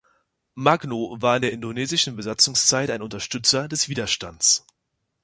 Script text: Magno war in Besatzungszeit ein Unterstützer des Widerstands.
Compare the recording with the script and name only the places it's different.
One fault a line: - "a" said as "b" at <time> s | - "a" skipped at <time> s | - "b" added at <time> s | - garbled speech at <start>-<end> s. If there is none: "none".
- "der indonesischen" added at 1.4 s